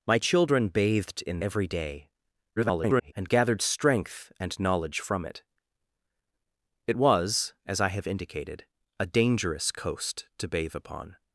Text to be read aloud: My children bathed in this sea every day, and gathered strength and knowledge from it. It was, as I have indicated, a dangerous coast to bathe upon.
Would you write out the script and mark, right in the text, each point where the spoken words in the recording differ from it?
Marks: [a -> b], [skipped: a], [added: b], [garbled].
My children bathed in [skipped: this sea] every day, [garbled] and gathered strength and knowledge from it. It was, as I have indicated, a dangerous coast to bathe upon.